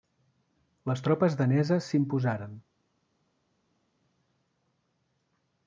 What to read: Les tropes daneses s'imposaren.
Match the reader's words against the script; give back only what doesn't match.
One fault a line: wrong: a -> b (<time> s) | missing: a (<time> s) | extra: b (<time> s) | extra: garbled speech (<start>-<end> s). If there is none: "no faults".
no faults